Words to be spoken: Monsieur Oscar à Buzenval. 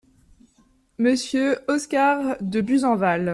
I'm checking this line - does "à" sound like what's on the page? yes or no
no